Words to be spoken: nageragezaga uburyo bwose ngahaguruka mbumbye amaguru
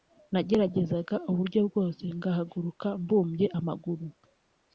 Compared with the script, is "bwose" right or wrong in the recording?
right